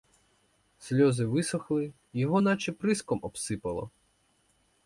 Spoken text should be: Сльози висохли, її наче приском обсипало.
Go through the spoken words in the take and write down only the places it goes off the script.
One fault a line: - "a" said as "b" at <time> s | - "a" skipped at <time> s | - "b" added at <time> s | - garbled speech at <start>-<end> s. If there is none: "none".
- "її" said as "його" at 2.1 s